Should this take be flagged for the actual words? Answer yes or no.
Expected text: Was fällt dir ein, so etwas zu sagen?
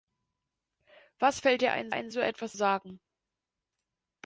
yes